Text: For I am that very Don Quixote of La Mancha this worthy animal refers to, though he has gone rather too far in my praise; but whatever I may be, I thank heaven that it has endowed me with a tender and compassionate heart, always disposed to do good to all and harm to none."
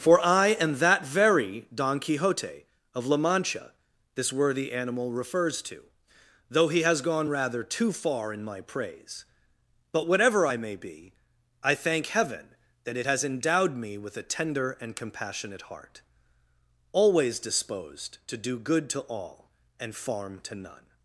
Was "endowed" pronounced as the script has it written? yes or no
yes